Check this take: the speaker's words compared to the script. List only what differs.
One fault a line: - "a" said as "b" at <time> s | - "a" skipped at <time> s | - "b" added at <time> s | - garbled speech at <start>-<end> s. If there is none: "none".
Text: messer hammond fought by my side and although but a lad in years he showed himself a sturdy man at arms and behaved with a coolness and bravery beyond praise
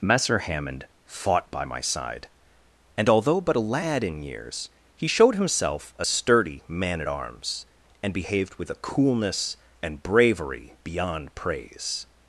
none